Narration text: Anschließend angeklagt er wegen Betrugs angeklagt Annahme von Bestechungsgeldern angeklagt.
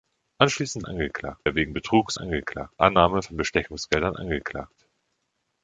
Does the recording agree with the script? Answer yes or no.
yes